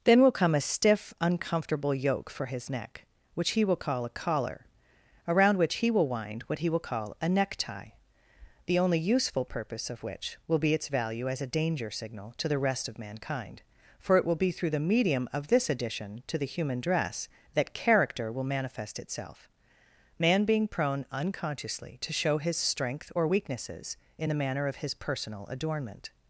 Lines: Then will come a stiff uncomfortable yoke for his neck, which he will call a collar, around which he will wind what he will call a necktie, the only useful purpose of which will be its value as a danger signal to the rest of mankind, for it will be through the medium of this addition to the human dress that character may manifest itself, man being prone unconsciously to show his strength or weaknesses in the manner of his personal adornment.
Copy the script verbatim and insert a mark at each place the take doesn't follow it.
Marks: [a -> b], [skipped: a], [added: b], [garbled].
Then will come a stiff uncomfortable yoke for his neck, which he will call a collar, around which he will wind what he will call a necktie, the only useful purpose of which will be its value as a danger signal to the rest of mankind, for it will be through the medium of this addition to the human dress that character [may -> will] manifest itself, man being prone unconsciously to show his strength or weaknesses in the manner of his personal adornment.